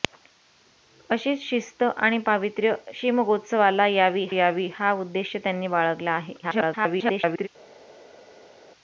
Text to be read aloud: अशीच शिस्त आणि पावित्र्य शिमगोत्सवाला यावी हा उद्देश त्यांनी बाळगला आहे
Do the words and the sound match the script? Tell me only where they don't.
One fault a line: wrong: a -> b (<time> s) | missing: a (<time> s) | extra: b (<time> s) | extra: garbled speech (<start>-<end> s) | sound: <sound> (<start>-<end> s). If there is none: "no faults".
extra: यावी (4.3 s)
extra: garbled speech (6.4-7.5 s)